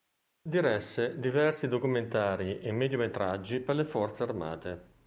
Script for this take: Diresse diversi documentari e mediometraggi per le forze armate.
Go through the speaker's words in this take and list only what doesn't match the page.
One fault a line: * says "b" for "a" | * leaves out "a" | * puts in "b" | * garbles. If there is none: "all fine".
all fine